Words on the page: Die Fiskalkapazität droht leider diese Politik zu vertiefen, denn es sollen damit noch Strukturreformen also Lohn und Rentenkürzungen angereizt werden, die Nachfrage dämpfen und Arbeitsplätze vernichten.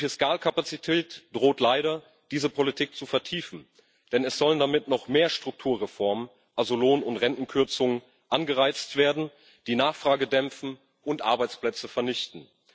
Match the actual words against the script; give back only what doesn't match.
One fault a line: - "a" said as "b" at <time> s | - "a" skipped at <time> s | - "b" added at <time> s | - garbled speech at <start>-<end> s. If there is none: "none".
- "mehr" added at 5.1 s